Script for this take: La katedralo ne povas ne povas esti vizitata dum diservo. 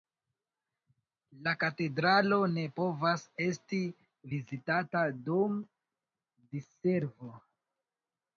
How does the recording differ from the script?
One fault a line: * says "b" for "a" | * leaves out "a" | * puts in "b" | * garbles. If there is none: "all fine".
* leaves out "ne povas"